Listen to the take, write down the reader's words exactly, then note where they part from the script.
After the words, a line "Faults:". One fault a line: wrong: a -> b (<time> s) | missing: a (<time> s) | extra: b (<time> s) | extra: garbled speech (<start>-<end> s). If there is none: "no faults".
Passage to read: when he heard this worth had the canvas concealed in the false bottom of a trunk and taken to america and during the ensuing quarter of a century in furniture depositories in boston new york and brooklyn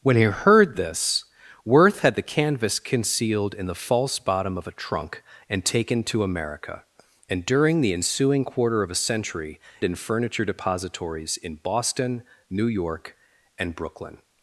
when he heard this worth had the canvas concealed in the false bottom of a trunk and taken to america and during the ensuing quarter of a century in furniture depositories in boston new york and brooklyn
Faults:
no faults